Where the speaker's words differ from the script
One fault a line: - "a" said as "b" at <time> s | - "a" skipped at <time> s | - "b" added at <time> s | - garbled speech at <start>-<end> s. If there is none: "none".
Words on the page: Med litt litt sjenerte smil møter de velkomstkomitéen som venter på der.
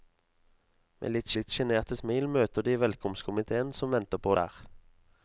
none